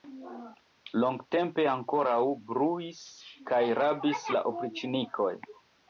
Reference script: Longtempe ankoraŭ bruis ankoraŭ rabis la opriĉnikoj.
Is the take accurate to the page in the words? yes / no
no